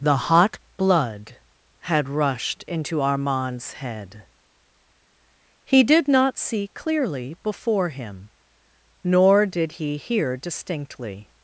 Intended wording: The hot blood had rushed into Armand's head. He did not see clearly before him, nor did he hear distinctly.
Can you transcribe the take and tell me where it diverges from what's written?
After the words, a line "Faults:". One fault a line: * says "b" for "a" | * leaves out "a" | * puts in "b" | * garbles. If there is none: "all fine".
The hot blood had rushed into Armand's head. He did not see clearly before him, nor did he hear distinctly.
Faults:
all fine